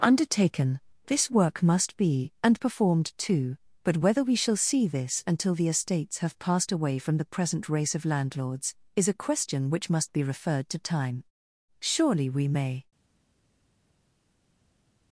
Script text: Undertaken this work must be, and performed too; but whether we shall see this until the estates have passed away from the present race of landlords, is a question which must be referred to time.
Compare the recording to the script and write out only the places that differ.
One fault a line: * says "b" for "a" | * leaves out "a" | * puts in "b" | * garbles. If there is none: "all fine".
* puts in "Surely we may"